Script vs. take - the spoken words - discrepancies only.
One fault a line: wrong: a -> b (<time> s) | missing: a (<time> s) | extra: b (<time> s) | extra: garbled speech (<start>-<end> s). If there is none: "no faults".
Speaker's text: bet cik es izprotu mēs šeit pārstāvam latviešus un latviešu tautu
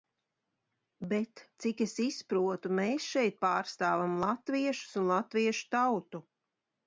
no faults